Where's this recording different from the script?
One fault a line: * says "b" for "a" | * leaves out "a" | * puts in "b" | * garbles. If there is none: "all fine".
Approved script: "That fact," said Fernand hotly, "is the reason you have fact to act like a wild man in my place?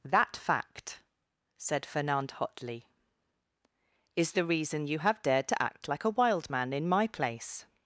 * says "dared" for "fact"